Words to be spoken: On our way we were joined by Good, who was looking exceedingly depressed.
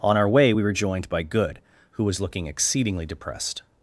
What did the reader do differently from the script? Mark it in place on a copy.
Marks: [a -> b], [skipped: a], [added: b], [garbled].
On our way we were joined by Good, who was looking exceedingly depressed.